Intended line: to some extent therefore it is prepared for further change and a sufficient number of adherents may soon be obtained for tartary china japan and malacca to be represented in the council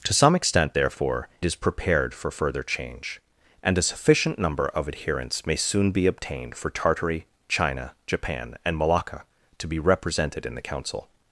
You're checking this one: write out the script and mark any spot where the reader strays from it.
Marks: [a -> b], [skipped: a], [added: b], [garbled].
to some extent therefore [skipped: it] is prepared for further change and a sufficient number of adherents may soon be obtained for tartary china japan and malacca to be represented in the council